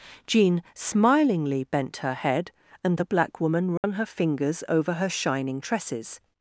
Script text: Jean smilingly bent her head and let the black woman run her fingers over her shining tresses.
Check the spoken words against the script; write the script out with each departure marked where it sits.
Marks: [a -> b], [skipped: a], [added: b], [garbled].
Jean smilingly bent her head and [skipped: let] the black woman run her fingers over her shining tresses.